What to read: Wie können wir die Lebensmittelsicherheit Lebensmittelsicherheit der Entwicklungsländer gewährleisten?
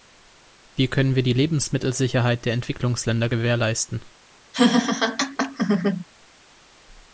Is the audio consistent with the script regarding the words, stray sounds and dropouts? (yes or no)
no